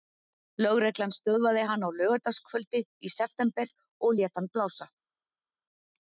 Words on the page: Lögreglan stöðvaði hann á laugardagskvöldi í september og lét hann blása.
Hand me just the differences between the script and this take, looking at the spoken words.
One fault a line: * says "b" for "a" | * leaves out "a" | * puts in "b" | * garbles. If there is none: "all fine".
all fine